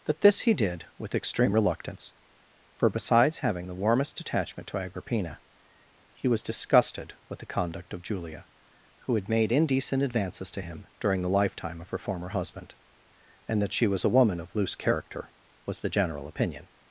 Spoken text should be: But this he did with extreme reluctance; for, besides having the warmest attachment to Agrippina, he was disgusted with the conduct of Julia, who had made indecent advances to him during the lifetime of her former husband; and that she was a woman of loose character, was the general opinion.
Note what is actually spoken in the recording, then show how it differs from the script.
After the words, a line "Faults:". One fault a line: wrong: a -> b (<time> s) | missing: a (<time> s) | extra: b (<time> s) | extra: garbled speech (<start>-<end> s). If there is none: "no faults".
That this he did with extreme reluctance; for, besides having the warmest attachment to Agrippina, he was disgusted with the conduct of Julia, who had made indecent advances to him during the lifetime of her former husband; and that she was a woman of loose character, was the general opinion.
Faults:
wrong: But -> That (0.1 s)